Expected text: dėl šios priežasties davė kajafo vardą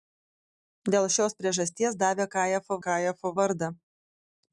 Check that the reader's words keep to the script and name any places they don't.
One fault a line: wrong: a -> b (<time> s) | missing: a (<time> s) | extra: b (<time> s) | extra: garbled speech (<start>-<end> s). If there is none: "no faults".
extra: kajafo (2.9 s)